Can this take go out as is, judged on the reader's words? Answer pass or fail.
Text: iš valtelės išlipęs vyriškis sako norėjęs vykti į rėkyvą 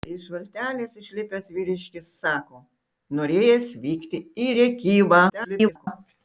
fail